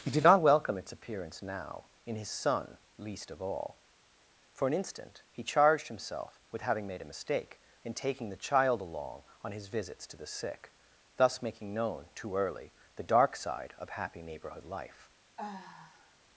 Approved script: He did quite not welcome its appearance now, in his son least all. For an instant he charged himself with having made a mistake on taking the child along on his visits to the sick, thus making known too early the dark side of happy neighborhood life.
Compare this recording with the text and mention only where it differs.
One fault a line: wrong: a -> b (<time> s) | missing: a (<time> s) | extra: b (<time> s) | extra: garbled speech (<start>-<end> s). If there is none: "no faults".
missing: quite (0.2 s)
extra: of (3.3 s)
wrong: on -> in (7.8 s)